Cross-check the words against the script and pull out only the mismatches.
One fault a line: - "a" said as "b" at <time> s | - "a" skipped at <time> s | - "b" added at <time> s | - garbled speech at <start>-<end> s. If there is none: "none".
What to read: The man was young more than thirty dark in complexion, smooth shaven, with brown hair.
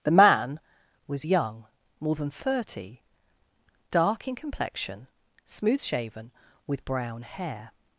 none